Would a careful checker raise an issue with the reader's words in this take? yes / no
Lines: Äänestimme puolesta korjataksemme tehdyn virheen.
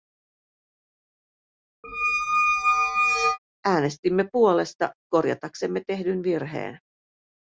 no